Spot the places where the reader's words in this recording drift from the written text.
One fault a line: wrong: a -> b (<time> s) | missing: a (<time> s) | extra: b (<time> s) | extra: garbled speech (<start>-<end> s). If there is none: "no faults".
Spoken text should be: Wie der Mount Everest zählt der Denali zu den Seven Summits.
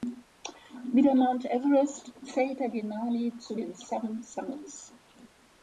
no faults